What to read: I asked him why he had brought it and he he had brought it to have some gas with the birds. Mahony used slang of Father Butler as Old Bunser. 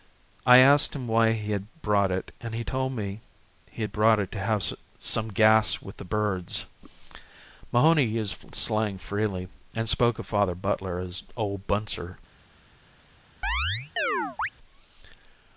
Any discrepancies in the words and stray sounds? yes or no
yes